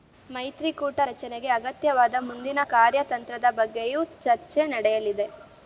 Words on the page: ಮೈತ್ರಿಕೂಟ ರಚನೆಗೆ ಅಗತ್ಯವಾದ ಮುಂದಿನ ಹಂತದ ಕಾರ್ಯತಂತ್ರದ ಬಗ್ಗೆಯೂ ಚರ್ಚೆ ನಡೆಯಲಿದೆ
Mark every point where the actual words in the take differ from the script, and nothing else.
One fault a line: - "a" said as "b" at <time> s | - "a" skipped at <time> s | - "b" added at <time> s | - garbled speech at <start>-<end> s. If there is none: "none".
- "ಹಂತದ" skipped at 2.6 s